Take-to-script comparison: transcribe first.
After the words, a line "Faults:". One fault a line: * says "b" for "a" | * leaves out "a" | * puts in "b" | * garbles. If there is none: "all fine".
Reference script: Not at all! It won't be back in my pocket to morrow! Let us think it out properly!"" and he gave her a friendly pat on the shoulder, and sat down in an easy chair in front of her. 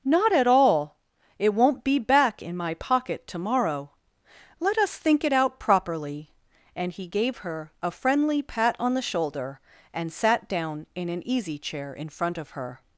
Not at all! It won't be back in my pocket to morrow! Let us think it out properly!"" and he gave her a friendly pat on the shoulder, and sat down in an easy chair in front of her.
Faults:
all fine